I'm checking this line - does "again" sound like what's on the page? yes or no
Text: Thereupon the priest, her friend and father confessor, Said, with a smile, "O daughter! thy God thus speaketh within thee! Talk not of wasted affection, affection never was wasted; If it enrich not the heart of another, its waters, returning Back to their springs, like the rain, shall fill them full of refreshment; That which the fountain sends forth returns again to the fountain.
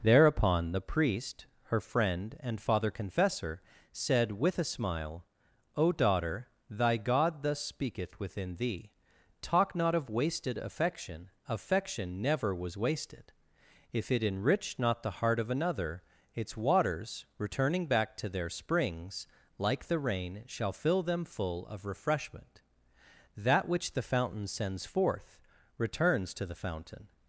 no